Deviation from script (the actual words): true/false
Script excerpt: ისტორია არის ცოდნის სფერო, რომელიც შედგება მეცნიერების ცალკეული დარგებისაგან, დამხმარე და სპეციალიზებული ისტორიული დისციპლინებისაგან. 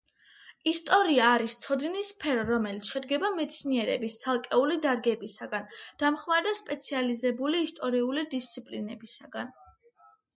false